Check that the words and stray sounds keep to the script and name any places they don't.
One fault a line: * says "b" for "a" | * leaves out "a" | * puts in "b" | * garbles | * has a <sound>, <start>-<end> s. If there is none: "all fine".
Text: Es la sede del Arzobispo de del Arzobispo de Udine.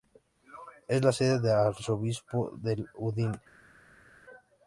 * leaves out "del Arzobispo de"